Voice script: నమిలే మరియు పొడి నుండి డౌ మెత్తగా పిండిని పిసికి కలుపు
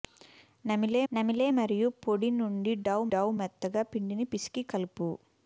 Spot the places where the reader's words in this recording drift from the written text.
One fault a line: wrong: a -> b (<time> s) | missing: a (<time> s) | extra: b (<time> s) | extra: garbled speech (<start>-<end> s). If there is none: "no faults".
extra: నమిలే (1.1 s)
extra: డౌ (3.1 s)